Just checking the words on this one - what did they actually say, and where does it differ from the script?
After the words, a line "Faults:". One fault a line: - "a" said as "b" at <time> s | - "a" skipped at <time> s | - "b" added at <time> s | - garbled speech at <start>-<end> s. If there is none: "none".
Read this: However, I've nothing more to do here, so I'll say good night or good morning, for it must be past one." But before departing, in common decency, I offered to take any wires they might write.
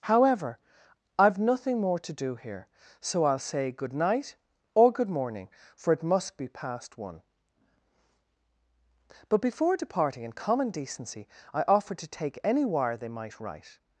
However, I've nothing more to do here, so I'll say good night or good morning, for it must be past one." But before departing, in common decency, I offered to take any wire they might write.
Faults:
- "wires" said as "wire" at 12.7 s